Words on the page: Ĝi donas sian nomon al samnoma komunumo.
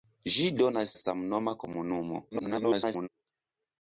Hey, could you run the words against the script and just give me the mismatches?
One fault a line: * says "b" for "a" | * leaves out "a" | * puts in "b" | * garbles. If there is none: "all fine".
* leaves out "sian nomon al"
* garbles